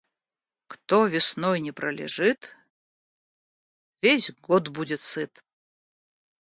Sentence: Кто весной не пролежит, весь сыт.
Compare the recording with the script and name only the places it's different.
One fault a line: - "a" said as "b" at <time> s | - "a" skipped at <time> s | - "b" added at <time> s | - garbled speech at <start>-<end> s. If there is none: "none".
- "год будет" added at 4.3 s